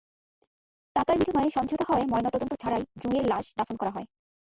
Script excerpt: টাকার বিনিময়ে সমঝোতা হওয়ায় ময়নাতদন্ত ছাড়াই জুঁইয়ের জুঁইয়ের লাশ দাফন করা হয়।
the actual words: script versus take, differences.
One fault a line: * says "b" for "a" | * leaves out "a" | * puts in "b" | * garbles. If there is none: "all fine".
* leaves out "জুঁইয়ের"